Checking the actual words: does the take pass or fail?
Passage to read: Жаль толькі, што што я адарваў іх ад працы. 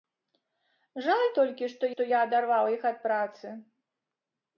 pass